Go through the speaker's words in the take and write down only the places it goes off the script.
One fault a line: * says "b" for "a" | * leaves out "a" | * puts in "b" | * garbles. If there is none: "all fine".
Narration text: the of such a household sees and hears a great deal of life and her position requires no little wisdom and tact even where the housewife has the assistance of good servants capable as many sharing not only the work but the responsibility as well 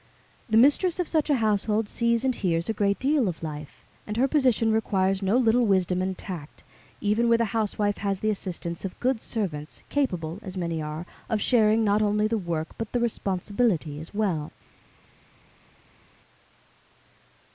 * puts in "mistress"
* puts in "are of"